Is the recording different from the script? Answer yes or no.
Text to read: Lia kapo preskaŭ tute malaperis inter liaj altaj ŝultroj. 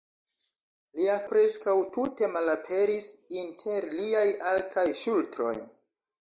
yes